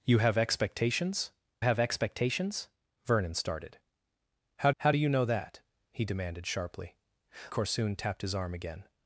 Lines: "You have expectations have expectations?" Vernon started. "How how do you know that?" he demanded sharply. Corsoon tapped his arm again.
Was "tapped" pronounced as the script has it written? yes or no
yes